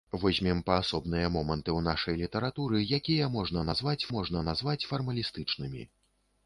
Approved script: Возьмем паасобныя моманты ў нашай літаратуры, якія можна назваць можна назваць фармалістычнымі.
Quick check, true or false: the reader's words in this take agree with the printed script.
true